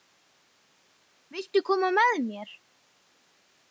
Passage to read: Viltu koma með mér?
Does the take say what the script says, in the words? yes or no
yes